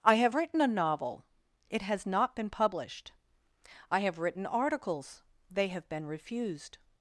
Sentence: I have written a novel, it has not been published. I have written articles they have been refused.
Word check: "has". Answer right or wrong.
right